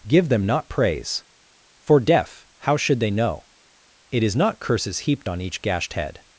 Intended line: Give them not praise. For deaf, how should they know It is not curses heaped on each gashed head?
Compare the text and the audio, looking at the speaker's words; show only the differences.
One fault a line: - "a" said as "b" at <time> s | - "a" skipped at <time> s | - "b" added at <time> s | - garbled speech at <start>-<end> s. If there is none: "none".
none